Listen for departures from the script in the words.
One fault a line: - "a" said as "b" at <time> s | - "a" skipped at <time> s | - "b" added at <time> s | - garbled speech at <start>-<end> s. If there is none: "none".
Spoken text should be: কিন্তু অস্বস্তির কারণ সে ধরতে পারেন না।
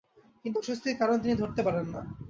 - "সে" said as "তিনি" at 1.2 s